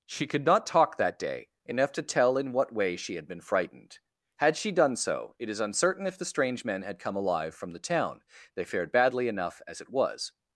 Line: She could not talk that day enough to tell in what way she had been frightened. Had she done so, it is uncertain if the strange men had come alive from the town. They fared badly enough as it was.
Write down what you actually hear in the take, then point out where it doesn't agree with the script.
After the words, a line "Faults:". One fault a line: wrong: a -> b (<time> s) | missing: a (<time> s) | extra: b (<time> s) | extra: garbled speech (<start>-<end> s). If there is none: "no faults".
She could not talk that day enough to tell in what way she had been frightened. Had she done so, it is uncertain if the strange men had come alive from the town. They fared badly enough as it was.
Faults:
no faults